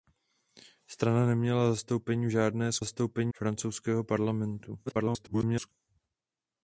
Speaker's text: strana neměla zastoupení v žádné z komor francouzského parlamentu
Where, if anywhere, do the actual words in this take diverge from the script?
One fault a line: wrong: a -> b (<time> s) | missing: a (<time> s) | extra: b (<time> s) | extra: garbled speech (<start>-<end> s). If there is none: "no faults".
wrong: komor -> zastoupení (2.8 s)
extra: garbled speech (4.9-5.7 s)